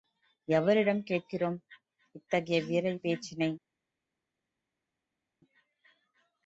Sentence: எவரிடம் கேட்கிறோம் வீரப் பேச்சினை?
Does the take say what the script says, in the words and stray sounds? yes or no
no